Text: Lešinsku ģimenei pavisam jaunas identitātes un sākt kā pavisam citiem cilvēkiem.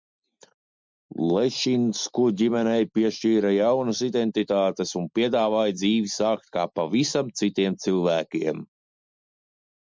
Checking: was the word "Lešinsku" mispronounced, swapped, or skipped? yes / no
no